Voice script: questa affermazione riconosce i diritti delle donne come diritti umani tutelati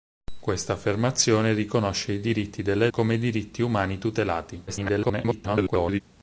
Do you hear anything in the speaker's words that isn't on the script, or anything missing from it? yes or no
yes